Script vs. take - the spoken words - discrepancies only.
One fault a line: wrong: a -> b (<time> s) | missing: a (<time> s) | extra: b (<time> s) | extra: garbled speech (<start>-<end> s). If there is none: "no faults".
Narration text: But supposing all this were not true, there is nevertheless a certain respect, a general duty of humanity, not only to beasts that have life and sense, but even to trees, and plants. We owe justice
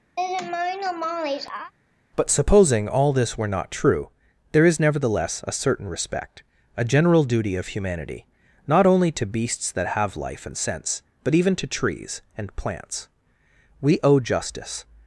no faults